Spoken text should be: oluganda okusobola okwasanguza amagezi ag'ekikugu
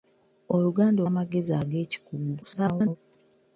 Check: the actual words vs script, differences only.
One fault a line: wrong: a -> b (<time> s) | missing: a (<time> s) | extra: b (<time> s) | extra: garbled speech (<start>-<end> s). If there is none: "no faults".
missing: okusobola okwasanguza (1.0 s)
extra: garbled speech (2.4-3.0 s)